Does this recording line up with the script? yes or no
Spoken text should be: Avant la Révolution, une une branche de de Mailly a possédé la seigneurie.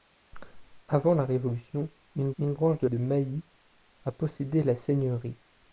yes